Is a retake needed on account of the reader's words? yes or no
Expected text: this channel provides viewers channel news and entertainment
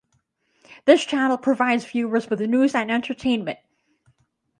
yes